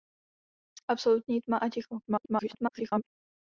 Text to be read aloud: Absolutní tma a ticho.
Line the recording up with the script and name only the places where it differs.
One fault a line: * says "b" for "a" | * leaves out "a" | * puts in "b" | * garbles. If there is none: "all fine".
* garbles